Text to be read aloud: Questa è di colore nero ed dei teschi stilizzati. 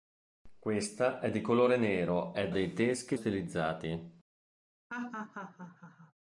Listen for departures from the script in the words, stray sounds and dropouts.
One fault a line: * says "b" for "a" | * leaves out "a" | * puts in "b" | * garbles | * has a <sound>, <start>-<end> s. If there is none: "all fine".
* has a laugh, 4.9-6.1 s